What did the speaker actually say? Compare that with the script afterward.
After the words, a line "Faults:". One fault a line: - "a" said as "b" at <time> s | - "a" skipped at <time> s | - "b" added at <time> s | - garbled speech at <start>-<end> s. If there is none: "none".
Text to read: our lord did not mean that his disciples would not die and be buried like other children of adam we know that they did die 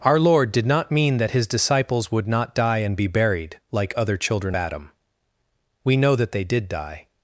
our lord did not mean that his disciples would not die and be buried like other children adam we know that they did die
Faults:
- "of" skipped at 4.5 s